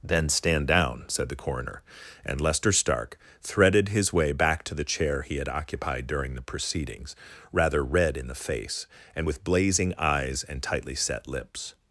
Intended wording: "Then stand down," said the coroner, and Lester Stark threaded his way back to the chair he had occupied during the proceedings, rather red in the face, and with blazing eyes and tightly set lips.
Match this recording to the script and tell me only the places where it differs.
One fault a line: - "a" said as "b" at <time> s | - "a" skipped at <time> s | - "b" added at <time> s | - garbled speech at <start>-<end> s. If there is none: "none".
none